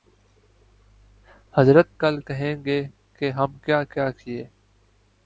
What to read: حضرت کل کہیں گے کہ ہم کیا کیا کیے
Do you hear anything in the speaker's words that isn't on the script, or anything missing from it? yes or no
no